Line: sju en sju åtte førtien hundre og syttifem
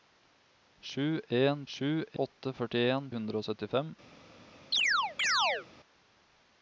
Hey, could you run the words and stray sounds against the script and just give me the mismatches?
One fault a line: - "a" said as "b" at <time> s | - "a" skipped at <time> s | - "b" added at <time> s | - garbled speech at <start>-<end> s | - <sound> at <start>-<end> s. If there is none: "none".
- chirp at 4.7-5.7 s